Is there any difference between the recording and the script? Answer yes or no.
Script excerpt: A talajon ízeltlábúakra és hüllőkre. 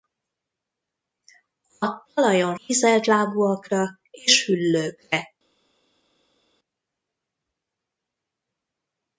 no